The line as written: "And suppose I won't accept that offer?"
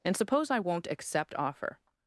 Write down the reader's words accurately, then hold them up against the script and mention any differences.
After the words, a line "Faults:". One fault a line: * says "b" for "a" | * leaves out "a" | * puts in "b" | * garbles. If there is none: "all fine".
"And suppose I won't accept offer?"
Faults:
* leaves out "that"